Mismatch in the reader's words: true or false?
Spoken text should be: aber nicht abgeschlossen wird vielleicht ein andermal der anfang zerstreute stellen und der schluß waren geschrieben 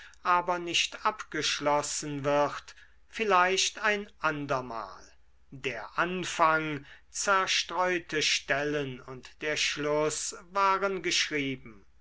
false